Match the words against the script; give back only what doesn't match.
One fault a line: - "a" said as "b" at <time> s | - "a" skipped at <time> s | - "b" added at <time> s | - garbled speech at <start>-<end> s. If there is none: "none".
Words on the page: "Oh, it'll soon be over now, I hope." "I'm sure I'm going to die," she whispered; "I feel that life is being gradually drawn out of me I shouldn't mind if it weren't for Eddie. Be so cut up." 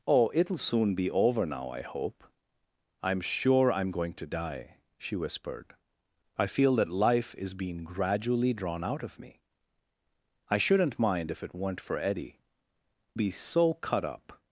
none